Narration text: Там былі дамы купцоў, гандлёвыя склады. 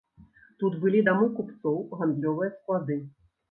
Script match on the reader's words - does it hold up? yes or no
no